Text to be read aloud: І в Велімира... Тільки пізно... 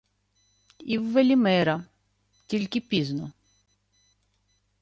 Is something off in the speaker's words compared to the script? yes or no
no